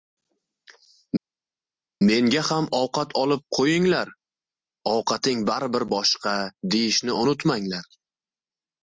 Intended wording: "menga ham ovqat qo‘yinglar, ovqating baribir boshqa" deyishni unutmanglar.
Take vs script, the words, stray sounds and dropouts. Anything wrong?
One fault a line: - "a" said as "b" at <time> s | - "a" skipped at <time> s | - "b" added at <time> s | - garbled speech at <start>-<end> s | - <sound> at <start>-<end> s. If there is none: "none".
- "olib" added at 3.2 s